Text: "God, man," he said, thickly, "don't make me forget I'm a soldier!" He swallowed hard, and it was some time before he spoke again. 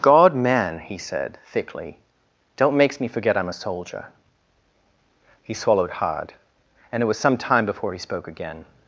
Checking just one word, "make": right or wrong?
wrong